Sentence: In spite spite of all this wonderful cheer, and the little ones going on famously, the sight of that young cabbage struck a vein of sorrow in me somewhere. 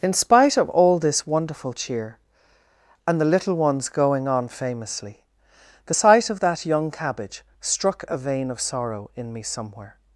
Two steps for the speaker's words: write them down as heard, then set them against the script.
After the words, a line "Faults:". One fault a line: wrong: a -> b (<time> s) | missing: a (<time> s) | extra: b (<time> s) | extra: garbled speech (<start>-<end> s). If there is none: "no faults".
In spite of all this wonderful cheer, and the little ones going on famously, the sight of that young cabbage struck a vein of sorrow in me somewhere.
Faults:
missing: spite (0.6 s)